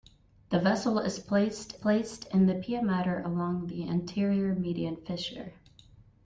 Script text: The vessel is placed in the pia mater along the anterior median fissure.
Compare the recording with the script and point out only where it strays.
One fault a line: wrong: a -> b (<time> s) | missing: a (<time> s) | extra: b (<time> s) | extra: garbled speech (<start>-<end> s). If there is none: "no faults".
extra: placed (1.7 s)